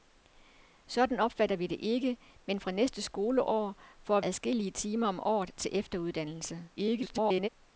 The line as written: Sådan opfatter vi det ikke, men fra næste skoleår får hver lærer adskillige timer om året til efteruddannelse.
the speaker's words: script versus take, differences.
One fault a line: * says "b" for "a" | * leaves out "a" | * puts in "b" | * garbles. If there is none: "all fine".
* leaves out "hver lærer"
* garbles